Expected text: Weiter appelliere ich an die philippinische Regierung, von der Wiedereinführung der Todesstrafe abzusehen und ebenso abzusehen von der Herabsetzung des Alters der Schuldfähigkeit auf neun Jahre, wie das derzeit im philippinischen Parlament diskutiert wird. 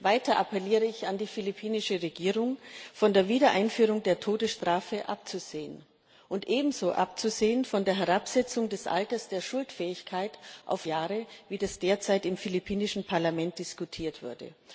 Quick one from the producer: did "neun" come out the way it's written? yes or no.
no